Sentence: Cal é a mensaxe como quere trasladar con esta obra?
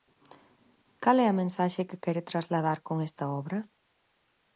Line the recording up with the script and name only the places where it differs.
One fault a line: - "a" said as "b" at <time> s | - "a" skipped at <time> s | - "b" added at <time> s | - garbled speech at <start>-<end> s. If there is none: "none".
- "como" said as "que" at 1.9 s